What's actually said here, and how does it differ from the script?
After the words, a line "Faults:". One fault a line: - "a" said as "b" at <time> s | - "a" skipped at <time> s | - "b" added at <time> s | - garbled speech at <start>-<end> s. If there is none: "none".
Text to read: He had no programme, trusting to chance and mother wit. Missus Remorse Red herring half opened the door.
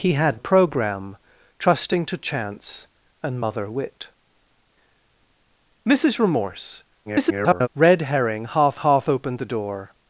He had programme, trusting to chance and mother wit. Missus Remorse [garbled] Red herring half half opened the door.
Faults:
- "no" skipped at 0.4 s
- garbled speech at 7.1-7.7 s
- "half" added at 8.7 s